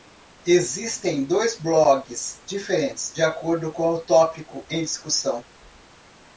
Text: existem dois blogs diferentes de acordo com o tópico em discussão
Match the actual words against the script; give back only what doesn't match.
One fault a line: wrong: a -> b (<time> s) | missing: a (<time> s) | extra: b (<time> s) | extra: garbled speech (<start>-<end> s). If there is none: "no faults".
no faults